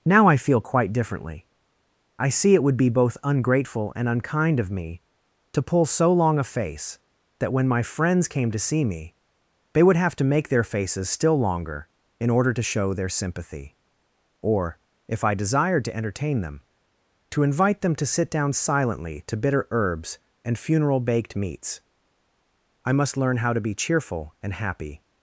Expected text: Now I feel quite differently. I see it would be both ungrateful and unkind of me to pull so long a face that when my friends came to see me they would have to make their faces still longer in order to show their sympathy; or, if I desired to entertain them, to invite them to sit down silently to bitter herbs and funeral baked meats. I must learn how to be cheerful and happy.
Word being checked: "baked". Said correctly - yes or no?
yes